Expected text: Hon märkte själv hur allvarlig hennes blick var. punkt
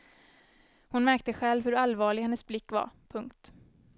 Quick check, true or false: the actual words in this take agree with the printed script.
true